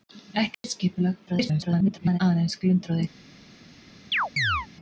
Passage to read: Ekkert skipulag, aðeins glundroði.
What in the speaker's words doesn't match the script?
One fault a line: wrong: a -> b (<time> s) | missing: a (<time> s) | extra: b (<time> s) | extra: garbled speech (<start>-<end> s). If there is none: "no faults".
extra: garbled speech (1.3-2.2 s)